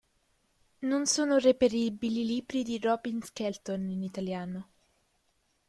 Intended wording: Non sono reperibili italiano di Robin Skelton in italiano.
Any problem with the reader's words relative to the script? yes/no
yes